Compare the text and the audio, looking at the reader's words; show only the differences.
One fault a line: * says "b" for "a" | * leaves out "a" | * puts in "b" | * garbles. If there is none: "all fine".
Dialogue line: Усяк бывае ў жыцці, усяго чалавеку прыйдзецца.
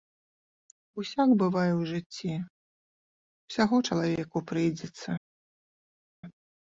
all fine